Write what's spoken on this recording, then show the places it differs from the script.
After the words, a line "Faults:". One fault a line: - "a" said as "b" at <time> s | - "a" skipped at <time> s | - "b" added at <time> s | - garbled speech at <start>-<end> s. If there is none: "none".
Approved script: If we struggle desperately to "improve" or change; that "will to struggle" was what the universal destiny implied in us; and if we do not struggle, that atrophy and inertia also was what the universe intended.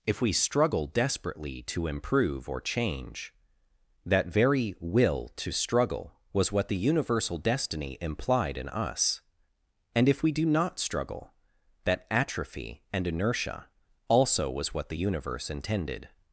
If we struggle desperately to "improve" or change; that very "will to struggle" was what the universal destiny implied in us; and if we do not struggle, that atrophy and inertia also was what the universe intended.
Faults:
- "very" added at 4.3 s